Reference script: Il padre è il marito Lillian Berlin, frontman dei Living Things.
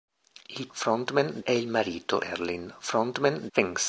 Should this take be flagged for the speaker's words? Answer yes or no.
yes